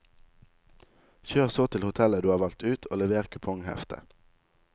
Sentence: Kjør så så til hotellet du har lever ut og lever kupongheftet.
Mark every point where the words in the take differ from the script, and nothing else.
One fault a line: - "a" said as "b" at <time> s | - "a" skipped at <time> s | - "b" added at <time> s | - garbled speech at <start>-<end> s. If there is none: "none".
- "så" skipped at 1.7 s
- "lever" said as "valgt" at 2.4 s